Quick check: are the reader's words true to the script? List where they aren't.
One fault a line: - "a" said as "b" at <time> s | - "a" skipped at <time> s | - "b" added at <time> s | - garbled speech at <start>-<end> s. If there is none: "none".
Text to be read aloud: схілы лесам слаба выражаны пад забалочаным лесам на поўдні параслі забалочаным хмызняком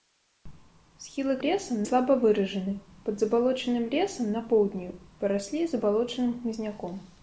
none